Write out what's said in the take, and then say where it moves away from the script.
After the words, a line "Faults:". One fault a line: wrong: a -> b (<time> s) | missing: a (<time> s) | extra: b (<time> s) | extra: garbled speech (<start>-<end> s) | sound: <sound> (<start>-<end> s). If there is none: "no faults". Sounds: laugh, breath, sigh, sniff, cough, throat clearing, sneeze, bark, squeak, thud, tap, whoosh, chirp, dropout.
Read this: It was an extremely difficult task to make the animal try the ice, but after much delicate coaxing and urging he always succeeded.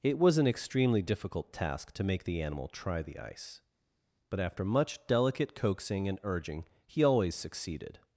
It was an extremely difficult task to make the animal try the ice, but after much delicate coaxing and urging he always succeeded.
Faults:
no faults